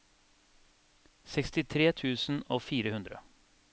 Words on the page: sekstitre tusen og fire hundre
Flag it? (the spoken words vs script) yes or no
no